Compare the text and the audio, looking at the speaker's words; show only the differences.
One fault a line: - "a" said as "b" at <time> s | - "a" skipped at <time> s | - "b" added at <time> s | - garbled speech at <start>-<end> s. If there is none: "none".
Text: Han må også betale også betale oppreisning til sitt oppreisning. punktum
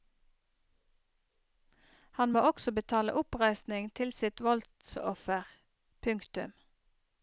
- "også betale" skipped at 3.1 s
- "oppreisning" said as "voldsoffer" at 4.4 s